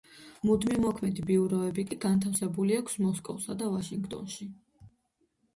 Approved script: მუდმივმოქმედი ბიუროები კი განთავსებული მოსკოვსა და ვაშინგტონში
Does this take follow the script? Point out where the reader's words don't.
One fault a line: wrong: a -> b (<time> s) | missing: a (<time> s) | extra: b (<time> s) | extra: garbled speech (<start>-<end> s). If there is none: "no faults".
extra: აქვს (2.8 s)